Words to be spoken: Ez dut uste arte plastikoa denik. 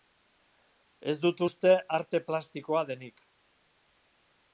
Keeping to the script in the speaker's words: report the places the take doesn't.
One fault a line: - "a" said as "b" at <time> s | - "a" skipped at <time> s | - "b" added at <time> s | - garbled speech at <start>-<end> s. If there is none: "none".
none